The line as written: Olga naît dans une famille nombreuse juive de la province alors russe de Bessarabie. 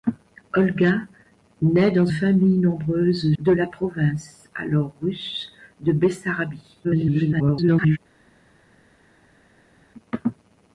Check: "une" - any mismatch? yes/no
yes